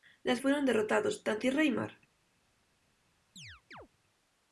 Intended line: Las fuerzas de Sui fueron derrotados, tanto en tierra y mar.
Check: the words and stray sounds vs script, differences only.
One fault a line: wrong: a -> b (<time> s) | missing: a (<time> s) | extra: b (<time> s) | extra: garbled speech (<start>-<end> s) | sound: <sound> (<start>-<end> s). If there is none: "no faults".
missing: fuerzas de Sui (0.4 s)
missing: en (1.5 s)
sound: chirp (3.4-3.9 s)